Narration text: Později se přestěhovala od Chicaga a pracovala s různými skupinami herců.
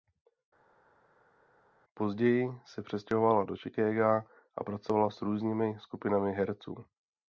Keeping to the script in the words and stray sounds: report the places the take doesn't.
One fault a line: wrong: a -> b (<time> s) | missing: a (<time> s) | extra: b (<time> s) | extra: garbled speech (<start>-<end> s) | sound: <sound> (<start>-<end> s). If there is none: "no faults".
wrong: od -> do (3.4 s)